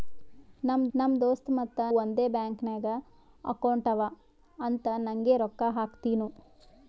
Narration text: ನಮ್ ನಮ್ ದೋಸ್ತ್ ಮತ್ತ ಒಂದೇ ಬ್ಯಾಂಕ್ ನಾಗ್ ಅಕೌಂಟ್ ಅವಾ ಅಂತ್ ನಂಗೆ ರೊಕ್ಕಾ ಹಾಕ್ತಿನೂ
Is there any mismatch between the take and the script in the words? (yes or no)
no